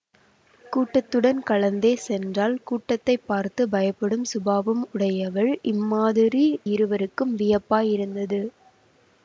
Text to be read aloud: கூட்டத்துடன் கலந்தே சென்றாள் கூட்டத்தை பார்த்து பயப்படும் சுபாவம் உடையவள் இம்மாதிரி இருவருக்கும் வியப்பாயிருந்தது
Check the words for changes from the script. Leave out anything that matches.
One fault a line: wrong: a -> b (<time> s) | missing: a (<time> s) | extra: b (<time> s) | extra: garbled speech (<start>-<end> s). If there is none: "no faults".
no faults